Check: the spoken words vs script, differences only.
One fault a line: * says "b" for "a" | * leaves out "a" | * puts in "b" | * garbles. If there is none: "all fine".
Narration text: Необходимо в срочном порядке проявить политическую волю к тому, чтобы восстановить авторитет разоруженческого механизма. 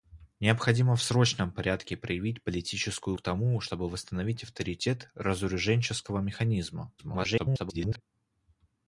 * leaves out "волю"
* garbles